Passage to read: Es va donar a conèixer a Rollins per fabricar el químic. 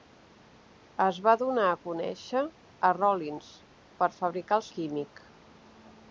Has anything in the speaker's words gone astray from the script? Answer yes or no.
no